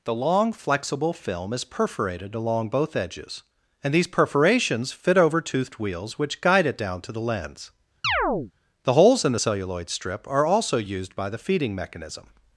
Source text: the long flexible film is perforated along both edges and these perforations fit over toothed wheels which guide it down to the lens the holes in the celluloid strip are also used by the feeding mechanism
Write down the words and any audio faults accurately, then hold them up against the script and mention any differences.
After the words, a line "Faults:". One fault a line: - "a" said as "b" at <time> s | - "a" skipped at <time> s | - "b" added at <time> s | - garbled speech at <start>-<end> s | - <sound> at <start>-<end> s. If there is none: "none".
the long flexible film is perforated along both edges and these perforations fit over toothed wheels which guide it down to the lens the holes in the celluloid strip are also used by the feeding mechanism
Faults:
- chirp at 8.0-8.5 s